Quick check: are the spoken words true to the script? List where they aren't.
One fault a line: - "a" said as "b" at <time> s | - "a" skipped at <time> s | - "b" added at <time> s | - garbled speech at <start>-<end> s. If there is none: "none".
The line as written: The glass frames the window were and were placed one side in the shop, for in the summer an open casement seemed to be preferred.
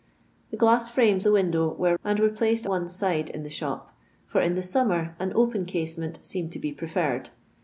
none